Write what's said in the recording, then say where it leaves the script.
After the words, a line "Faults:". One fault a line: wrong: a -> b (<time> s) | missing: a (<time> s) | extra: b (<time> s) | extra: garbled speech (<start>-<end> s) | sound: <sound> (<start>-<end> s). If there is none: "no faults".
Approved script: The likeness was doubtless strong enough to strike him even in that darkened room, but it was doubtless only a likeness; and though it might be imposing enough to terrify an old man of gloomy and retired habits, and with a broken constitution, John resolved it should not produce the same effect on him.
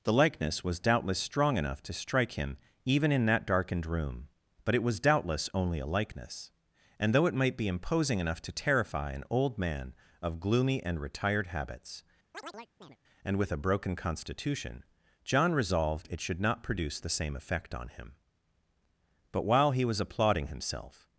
The likeness was doubtless strong enough to strike him even in that darkened room, but it was doubtless only a likeness; and though it might be imposing enough to terrify an old man of gloomy and retired habits, and with a broken constitution, John resolved it should not produce the same effect on him. But while he was applauding himself
Faults:
sound: chirp (12.3-13.0 s)
extra: But while he was applauding himself (19.3 s)